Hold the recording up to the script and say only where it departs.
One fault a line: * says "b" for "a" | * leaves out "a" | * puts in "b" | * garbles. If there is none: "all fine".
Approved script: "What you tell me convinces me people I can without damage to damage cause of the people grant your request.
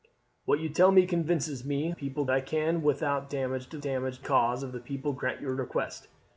all fine